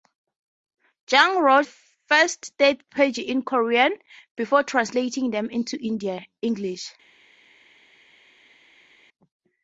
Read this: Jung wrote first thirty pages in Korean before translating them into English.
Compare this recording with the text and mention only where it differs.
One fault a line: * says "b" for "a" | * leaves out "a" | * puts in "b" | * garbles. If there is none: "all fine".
all fine